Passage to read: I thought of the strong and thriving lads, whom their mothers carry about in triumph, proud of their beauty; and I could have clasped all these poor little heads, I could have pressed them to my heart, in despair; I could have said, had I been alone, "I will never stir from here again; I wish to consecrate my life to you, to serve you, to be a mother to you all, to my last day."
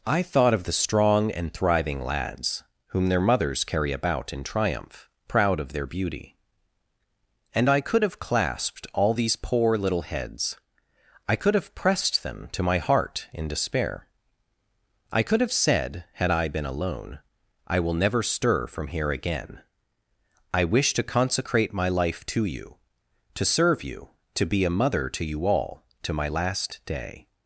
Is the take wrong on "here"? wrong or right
right